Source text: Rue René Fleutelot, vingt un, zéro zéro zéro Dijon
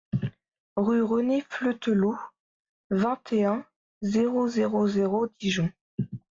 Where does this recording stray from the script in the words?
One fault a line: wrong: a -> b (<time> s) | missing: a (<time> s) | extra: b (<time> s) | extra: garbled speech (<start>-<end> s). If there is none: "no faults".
extra: et (3.3 s)